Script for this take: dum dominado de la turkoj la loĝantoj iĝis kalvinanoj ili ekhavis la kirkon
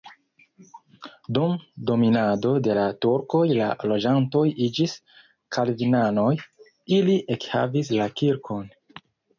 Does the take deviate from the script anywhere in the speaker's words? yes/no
no